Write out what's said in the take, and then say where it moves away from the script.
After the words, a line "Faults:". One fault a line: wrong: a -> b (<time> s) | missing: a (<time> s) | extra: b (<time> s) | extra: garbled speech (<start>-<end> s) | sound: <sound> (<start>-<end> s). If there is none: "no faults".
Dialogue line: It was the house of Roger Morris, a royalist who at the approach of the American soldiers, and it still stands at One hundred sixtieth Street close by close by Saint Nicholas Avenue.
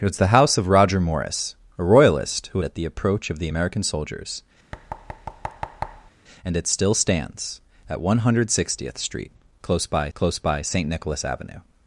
It was the house of Roger Morris, a royalist who at the approach of the American soldiers, and it still stands at One hundred sixtieth Street close by close by Saint Nicholas Avenue.
Faults:
sound: thud (4.7-6.1 s)